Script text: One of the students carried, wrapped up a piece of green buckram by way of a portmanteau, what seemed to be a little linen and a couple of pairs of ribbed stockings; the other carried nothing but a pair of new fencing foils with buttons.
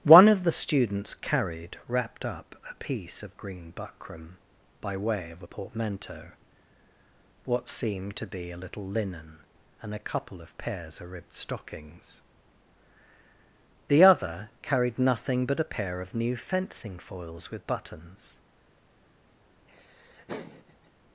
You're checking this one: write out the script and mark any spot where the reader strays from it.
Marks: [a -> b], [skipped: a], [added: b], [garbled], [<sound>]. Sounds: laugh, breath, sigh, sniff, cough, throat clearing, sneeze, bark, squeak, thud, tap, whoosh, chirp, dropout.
One of the students carried, wrapped up a piece of green buckram by way of a portmanteau, what seemed to be a little linen and a couple of pairs of ribbed stockings; the other carried nothing but a pair of new fencing foils with buttons. [laugh]